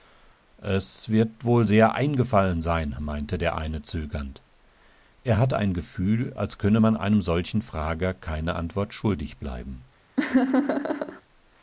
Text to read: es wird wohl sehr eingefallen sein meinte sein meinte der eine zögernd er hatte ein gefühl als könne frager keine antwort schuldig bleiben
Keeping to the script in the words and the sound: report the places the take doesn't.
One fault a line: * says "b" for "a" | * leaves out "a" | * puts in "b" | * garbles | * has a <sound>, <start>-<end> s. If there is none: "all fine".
* leaves out "sein meinte"
* puts in "man einem solchen"
* has a laugh, 10.2-11.2 s